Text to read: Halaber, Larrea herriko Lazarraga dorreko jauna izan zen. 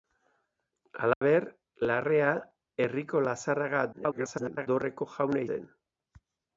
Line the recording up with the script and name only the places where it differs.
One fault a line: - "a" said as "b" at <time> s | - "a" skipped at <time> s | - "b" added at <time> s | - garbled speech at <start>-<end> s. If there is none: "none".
- garbled speech at 3.9-4.7 s
- "izan" skipped at 5.5 s